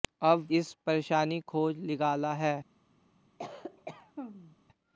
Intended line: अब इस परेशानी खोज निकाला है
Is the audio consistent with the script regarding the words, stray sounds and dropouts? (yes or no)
no